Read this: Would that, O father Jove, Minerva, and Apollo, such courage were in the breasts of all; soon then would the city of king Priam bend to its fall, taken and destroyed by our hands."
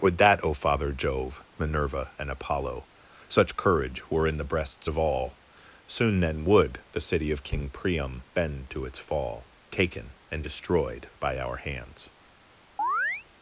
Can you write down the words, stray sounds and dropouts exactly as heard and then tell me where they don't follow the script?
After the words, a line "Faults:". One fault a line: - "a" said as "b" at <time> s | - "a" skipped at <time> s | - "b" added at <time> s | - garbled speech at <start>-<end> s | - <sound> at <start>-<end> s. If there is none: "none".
Would that, O father Jove, Minerva, and Apollo, such courage were in the breasts of all; soon then would the city of king Priam bend to its fall, taken and destroyed by our hands."
Faults:
- chirp at 12.8-13.3 s